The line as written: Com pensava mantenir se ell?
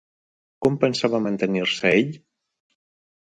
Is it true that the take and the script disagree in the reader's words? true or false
false